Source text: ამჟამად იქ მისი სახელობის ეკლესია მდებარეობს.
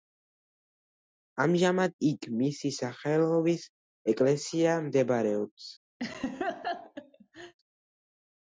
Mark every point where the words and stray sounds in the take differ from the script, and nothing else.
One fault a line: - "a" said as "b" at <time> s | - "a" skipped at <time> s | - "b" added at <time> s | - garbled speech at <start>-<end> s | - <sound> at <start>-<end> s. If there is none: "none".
- laugh at 6.0-7.5 s